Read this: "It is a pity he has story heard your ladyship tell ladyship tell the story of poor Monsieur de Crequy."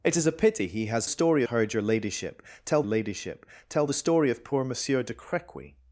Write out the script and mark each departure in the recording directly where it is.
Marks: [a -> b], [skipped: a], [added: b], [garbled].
"It is a pity he has story heard your ladyship tell ladyship tell the story of poor Monsieur de Crequy."